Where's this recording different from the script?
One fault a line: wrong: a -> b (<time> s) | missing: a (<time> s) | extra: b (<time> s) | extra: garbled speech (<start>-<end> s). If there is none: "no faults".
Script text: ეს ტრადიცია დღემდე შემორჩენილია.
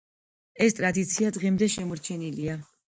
no faults